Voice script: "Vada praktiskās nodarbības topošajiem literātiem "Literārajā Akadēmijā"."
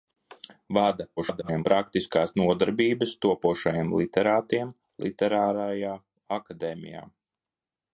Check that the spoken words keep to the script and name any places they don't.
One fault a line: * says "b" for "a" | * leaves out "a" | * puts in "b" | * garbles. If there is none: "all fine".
* garbles